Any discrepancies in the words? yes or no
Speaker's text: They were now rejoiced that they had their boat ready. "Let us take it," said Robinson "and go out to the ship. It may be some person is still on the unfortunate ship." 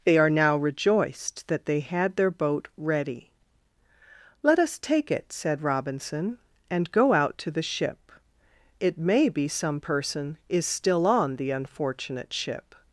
yes